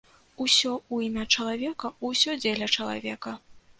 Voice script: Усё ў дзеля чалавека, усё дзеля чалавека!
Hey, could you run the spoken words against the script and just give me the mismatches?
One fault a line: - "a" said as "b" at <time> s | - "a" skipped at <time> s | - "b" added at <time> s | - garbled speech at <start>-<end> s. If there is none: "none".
- "дзеля" said as "імя" at 1.1 s